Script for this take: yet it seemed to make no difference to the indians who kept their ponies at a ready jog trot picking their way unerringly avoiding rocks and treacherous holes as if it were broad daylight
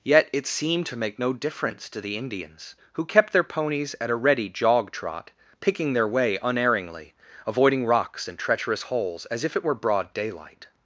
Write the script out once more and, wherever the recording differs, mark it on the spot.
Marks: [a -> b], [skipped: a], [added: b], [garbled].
yet it seemed to make no difference to the indians who kept their ponies at a ready jog trot picking their way unerringly avoiding rocks and treacherous holes as if it were broad daylight